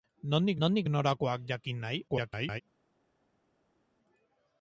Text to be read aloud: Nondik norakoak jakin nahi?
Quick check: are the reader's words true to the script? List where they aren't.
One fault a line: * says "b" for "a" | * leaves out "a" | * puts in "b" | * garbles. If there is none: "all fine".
* puts in "nondik"
* garbles